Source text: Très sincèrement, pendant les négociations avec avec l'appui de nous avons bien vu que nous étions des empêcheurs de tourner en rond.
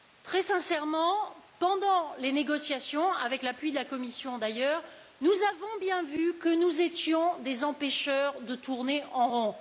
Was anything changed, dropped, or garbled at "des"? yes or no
no